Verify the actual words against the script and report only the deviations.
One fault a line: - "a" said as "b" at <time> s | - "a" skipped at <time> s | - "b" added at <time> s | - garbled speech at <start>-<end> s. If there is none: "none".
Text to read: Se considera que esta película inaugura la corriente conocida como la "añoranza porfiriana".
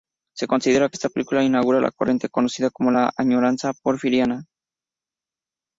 none